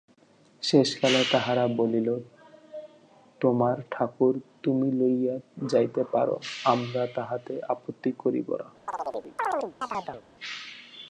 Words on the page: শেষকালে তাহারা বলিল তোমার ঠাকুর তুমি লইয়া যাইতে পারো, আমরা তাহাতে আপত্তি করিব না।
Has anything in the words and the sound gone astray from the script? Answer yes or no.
yes